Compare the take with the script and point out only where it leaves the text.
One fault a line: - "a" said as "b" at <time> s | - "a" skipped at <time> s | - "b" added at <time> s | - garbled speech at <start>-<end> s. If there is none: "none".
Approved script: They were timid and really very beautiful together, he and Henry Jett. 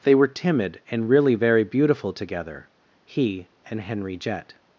none